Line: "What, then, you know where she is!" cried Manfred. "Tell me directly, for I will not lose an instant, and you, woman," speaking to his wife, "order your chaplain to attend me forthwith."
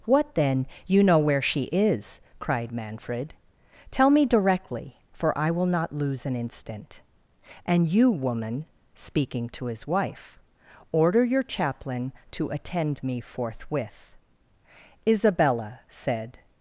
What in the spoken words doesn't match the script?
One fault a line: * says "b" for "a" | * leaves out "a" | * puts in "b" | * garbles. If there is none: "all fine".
* puts in "Isabella said"